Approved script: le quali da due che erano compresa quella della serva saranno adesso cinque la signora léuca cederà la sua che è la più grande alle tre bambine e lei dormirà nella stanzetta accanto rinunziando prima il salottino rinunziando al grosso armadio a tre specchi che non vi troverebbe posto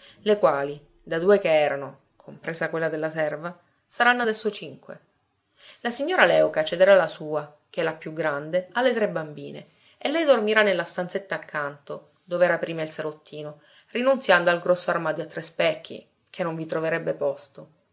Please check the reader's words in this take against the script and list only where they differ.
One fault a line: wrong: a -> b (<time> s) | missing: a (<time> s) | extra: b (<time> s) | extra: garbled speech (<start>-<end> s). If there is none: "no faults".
wrong: rinunziando -> dov'era (12.2 s)